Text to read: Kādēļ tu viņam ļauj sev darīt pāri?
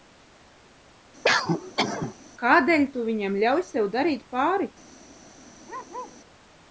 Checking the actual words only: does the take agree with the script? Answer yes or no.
yes